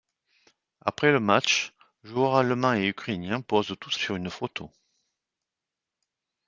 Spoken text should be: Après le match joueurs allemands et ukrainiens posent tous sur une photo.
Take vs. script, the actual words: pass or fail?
pass